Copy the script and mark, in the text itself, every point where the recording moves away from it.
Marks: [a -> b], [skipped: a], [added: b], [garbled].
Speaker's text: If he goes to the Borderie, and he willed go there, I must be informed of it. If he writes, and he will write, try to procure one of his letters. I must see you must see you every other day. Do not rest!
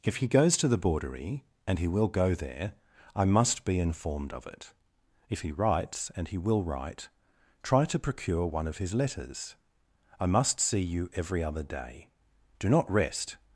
If he goes to the Borderie, and he [willed -> will] go there, I must be informed of it. If he writes, and he will write, try to procure one of his letters. I must see you [skipped: must see you] every other day. Do not rest!